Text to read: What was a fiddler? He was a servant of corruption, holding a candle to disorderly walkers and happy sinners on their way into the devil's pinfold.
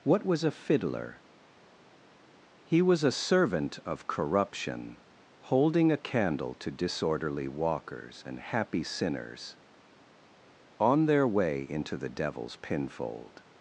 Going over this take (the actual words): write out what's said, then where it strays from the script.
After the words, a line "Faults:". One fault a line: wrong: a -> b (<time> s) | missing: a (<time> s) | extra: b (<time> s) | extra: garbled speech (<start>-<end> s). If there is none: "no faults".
What was a fiddler? He was a servant of corruption, holding a candle to disorderly walkers and happy sinners on their way into the devil's pinfold.
Faults:
no faults